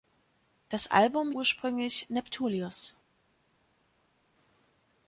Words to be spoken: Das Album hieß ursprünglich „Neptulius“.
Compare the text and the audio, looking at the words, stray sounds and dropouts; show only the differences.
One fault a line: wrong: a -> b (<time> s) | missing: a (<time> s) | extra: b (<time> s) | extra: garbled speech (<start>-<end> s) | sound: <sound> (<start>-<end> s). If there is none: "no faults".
missing: hieß (1.3 s)